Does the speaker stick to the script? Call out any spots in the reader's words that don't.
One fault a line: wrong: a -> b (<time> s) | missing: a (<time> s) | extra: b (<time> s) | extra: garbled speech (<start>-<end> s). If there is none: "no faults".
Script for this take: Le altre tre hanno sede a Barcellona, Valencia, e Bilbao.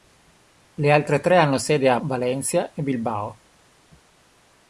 missing: Barcellona (2.0 s)